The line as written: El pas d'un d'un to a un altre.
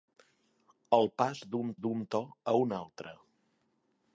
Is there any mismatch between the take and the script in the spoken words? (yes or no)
no